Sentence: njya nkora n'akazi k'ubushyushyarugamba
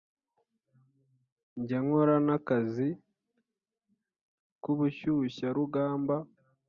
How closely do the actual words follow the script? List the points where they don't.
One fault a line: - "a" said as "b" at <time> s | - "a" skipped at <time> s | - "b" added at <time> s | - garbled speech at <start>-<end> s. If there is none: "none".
none